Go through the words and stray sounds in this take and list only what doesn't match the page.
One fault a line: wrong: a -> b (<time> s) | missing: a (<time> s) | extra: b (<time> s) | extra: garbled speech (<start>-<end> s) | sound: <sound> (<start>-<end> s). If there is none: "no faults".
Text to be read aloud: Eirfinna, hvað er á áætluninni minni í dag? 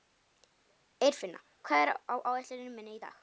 no faults